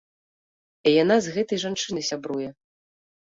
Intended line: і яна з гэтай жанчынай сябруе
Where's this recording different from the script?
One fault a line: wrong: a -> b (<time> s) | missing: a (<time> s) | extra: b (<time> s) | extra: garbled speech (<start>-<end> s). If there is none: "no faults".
no faults